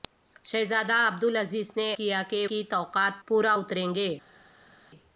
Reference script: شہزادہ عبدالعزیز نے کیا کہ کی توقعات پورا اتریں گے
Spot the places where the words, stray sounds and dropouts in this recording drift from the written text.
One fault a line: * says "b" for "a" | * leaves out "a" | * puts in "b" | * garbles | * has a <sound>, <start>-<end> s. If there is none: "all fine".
all fine